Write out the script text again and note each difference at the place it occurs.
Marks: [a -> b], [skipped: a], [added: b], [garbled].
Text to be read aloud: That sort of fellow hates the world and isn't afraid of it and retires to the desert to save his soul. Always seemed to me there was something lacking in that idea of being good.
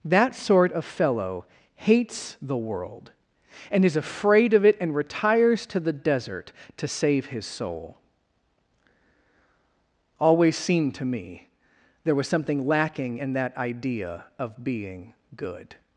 That sort of fellow hates the world and [isn't -> is] afraid of it and retires to the desert to save his soul. Always seemed to me there was something lacking in that idea of being good.